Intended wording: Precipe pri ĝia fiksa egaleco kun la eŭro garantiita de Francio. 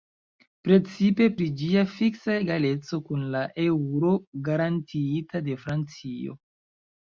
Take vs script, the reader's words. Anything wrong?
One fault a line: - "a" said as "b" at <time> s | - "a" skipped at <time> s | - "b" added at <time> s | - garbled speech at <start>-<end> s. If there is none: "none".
none